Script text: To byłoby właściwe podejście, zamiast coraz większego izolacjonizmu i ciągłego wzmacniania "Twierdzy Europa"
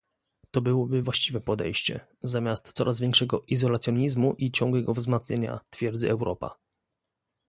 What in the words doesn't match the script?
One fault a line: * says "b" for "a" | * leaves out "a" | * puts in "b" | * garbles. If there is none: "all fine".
all fine